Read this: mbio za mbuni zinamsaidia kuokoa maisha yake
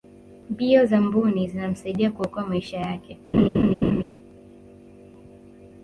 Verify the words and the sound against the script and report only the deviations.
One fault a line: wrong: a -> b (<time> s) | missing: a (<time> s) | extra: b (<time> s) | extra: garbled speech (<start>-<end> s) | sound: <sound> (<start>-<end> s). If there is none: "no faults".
sound: laugh (3.3-4.0 s)